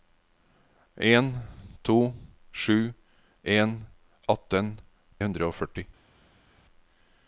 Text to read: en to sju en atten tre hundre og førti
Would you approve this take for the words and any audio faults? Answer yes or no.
no